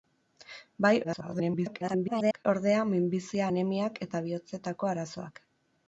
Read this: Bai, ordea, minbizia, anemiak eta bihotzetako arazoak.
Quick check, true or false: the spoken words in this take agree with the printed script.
false